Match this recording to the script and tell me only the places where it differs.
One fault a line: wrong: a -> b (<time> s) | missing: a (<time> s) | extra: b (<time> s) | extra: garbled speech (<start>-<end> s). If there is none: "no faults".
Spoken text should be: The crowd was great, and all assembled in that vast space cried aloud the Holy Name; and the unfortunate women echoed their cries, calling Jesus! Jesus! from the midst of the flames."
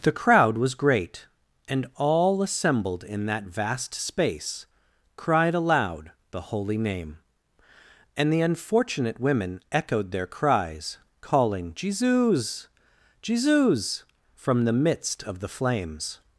no faults